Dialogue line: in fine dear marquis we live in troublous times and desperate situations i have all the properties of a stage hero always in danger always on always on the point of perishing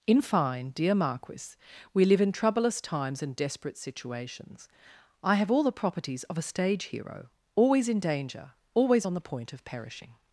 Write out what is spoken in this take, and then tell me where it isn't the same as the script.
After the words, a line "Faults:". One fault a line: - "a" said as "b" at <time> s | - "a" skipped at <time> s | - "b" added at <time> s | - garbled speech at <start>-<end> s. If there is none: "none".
in fine dear marquis we live in troublous times and desperate situations i have all the properties of a stage hero always in danger always on the point of perishing
Faults:
- "always on" skipped at 9.1 s